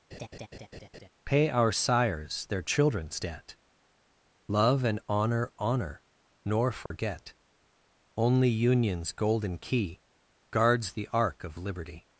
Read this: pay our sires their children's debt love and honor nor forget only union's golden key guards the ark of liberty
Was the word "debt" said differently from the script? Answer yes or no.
no